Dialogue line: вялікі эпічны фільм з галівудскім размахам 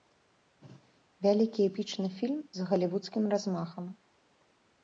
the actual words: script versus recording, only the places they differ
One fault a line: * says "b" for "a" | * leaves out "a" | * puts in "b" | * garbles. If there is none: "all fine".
all fine